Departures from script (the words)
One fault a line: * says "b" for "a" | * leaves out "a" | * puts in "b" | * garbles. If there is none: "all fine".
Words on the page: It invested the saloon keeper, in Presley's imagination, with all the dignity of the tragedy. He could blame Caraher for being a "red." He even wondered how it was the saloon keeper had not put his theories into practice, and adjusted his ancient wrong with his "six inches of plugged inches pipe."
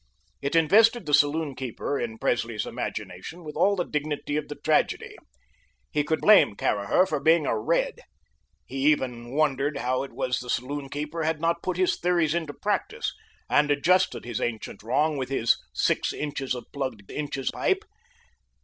all fine